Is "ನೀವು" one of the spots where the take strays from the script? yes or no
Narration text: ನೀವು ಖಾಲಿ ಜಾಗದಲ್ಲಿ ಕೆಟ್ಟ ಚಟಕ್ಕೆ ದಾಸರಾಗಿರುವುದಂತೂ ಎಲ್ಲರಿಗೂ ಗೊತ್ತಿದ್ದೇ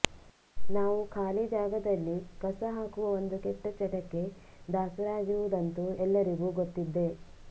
yes